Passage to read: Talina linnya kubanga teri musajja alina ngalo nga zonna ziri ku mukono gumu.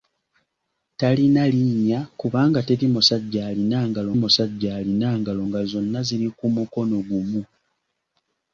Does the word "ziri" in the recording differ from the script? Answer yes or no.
no